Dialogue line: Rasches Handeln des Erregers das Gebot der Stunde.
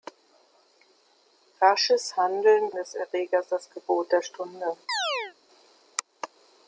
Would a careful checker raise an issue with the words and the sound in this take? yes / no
yes